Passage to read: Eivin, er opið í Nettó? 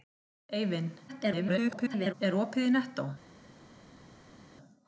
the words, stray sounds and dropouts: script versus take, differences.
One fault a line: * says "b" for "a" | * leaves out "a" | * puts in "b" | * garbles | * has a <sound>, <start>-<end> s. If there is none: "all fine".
* garbles